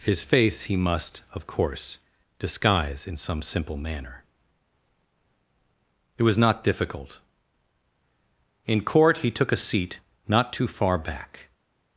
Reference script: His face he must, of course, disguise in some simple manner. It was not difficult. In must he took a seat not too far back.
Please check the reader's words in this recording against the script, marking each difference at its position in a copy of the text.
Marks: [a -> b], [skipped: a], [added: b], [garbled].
His face he must, of course, disguise in some simple manner. It was not difficult. In [must -> court] he took a seat not too far back.